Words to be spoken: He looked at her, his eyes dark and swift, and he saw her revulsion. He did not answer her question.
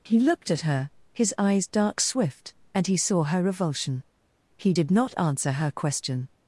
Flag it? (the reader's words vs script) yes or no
yes